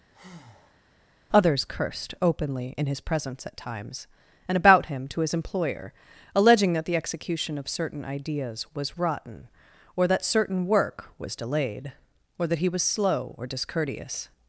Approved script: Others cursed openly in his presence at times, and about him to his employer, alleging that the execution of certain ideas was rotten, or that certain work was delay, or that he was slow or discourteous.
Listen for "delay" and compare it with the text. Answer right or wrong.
wrong